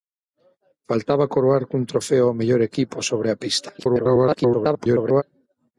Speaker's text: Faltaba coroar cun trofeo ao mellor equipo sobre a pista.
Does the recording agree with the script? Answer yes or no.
no